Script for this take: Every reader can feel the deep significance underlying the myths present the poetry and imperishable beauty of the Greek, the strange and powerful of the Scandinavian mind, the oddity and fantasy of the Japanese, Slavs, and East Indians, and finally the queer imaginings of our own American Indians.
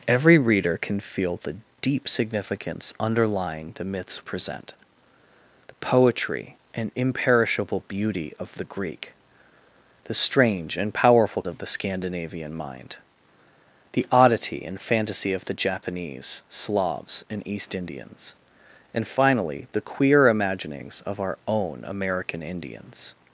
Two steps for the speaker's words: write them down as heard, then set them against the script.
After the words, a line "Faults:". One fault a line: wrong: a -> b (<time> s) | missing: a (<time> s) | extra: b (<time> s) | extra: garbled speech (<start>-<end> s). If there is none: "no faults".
Every reader can feel the deep significance underlying the myths present the poetry and imperishable beauty of the Greek, the strange and powerful of the Scandinavian mind, the oddity and fantasy of the Japanese, Slavs, and East Indians, and finally the queer imaginings of our own American Indians.
Faults:
no faults